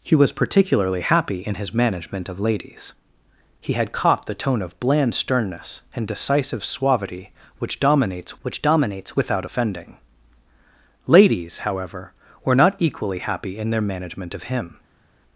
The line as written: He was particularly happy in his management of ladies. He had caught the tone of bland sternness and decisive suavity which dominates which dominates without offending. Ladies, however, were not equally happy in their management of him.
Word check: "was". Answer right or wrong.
right